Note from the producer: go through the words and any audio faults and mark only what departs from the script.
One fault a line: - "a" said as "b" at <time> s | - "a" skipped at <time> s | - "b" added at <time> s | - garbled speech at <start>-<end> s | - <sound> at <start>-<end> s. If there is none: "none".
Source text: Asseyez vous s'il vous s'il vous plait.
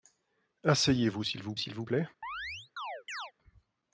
- chirp at 2.2-3.3 s